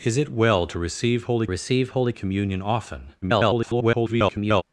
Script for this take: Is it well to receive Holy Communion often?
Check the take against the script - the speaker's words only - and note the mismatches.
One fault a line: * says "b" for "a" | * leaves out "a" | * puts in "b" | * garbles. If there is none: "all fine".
* puts in "receive Holy"
* garbles